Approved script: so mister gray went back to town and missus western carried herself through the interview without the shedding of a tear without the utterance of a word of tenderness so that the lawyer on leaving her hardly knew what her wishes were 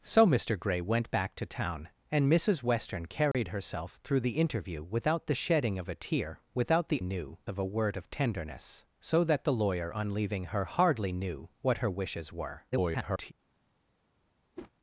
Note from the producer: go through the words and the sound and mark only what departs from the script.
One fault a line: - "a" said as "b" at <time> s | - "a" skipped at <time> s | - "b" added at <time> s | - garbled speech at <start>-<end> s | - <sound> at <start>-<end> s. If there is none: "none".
- dropout at 3.3-3.3 s
- "utterance" said as "knew" at 7.0 s
- garbled speech at 12.7-13.3 s
- whoosh at 14.6-14.7 s